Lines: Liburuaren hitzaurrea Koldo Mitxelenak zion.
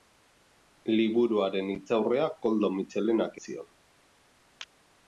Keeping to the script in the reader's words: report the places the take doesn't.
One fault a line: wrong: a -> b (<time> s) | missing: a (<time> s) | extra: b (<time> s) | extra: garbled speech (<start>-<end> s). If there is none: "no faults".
no faults